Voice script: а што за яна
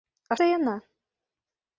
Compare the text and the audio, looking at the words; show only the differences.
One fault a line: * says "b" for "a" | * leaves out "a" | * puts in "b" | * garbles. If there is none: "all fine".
* leaves out "што"